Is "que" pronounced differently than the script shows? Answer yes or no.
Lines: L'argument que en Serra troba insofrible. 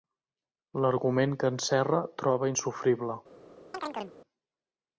no